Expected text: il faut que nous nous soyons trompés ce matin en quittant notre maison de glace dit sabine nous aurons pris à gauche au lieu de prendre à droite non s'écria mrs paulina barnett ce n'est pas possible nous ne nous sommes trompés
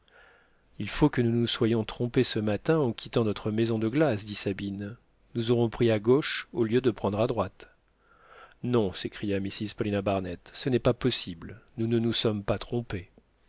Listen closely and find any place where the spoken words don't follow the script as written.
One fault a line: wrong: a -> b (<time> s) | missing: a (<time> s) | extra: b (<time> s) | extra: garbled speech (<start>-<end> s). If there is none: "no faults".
extra: pas (12.4 s)